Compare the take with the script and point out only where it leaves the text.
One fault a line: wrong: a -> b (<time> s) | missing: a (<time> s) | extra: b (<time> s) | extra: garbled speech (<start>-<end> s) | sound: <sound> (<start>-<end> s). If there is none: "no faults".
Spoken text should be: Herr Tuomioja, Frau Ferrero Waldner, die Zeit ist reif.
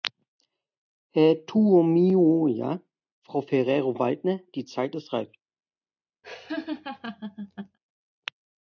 sound: laugh (6.2-7.8 s)